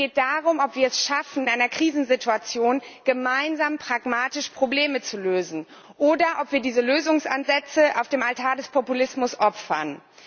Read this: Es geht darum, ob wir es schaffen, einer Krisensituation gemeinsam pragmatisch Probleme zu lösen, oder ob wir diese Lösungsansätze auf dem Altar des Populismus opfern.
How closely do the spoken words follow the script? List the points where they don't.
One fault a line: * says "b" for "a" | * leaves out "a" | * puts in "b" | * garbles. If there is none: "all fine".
all fine